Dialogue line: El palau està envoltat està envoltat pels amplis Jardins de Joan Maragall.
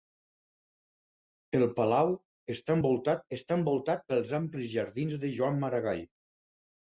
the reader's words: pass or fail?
pass